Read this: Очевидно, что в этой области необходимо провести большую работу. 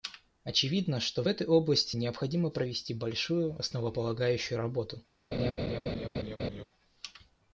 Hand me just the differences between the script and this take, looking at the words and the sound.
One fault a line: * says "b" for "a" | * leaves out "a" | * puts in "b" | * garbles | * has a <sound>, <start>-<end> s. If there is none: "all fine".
* puts in "основополагающую"
* has a laugh, 5.3-6.6 s